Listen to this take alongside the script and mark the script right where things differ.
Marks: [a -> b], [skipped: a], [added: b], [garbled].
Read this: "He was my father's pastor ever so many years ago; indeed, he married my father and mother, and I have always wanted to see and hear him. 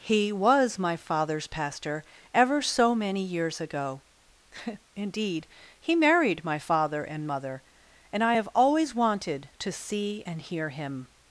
"He was my father's pastor ever so many years ago; indeed, he married my father and mother, and I have always wanted to see and hear him.